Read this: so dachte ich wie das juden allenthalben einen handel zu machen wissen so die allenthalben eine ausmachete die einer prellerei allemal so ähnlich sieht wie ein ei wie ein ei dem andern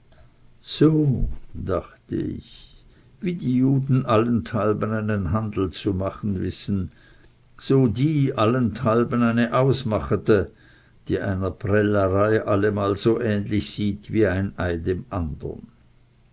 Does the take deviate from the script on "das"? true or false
true